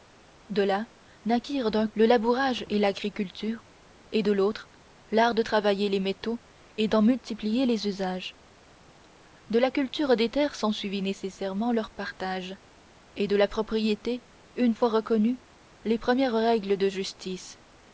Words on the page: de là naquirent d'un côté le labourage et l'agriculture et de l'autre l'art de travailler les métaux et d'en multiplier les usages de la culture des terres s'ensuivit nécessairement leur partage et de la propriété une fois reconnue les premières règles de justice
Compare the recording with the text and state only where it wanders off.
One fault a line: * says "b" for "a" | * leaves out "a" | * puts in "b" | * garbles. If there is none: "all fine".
* leaves out "côté"